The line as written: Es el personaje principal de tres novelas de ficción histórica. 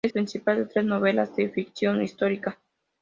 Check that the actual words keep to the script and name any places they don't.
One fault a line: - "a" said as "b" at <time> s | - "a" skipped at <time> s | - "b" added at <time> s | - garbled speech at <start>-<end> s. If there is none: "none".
- "el personaje" skipped at 0.1 s